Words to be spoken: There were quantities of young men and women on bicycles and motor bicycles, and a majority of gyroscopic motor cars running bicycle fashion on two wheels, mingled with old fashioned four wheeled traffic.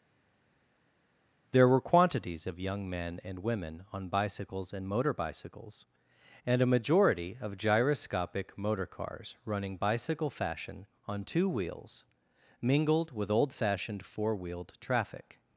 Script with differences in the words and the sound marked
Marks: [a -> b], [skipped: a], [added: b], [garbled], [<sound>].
There were quantities of young men and women on bicycles and motor bicycles, and a majority of gyroscopic motor cars running bicycle fashion on two wheels, mingled with old fashioned four wheeled traffic.